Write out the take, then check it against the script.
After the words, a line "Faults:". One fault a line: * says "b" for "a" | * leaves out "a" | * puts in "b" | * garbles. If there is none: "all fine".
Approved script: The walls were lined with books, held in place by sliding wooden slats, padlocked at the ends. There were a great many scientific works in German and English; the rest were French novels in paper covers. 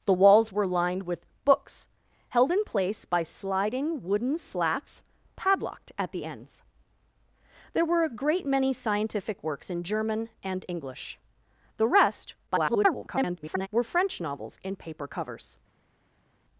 The walls were lined with books, held in place by sliding wooden slats, padlocked at the ends. There were a great many scientific works in German and English; the rest [garbled] were French novels in paper covers.
Faults:
* garbles